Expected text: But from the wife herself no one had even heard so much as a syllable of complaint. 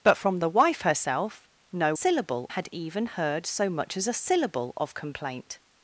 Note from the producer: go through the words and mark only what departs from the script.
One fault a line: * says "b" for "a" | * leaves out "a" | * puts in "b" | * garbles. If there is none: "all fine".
* says "syllable" for "one"